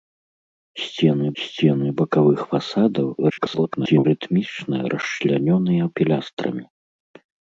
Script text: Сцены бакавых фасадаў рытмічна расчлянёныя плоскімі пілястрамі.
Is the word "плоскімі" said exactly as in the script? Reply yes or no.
no